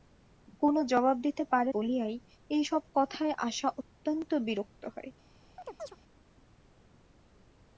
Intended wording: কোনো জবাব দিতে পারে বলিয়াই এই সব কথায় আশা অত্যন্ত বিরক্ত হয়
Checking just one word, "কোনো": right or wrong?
right